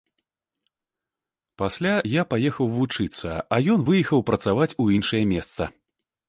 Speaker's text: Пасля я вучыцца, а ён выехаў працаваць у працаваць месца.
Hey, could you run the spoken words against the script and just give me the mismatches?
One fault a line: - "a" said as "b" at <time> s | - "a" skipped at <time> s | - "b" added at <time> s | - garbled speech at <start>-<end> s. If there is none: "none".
- "паехаў" added at 2.4 s
- "працаваць" said as "іншае" at 5.0 s